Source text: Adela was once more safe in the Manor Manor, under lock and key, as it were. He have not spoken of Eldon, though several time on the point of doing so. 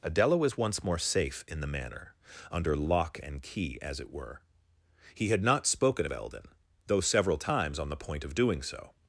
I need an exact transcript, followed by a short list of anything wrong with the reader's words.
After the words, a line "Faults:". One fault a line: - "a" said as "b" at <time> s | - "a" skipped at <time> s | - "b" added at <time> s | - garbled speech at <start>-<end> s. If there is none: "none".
Adela was once more safe in the Manor, under lock and key, as it were. He had not spoken of Eldon, though several times on the point of doing so.
Faults:
- "Manor" skipped at 2.1 s
- "have" said as "had" at 5.3 s
- "time" said as "times" at 7.4 s